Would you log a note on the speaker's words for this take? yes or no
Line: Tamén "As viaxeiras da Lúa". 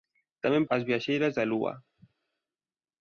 no